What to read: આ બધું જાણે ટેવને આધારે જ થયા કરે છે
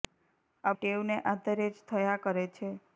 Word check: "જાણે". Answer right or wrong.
wrong